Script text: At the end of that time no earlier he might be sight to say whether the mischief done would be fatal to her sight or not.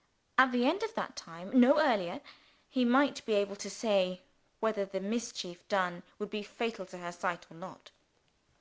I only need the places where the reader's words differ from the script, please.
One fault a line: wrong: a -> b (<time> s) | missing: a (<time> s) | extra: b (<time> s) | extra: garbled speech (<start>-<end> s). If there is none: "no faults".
wrong: sight -> able (3.3 s)